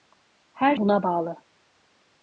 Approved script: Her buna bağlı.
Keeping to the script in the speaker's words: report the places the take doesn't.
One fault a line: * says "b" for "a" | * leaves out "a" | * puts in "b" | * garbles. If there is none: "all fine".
all fine